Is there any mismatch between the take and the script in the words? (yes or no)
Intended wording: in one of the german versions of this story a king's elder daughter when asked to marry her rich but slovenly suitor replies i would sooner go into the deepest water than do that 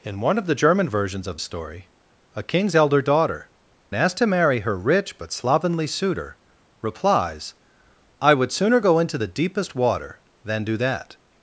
yes